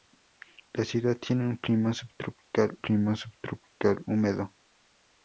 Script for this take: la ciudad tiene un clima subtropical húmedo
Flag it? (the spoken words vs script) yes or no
yes